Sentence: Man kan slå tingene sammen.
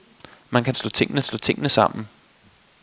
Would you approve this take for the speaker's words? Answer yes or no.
no